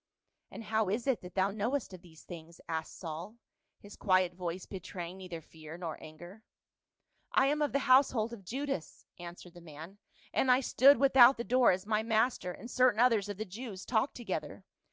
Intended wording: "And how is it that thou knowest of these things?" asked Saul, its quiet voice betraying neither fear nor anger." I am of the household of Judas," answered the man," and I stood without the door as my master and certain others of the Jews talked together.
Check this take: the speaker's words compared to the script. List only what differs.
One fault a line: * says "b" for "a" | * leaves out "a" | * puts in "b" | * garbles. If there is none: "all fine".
* says "his" for "its"